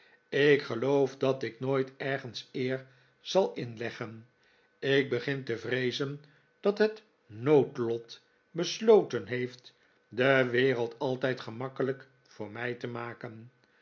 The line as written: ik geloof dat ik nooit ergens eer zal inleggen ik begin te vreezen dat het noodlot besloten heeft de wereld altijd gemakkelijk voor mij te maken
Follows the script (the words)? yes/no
yes